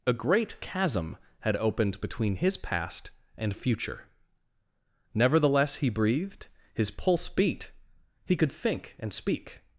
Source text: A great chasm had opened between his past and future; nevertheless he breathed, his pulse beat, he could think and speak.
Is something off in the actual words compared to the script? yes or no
no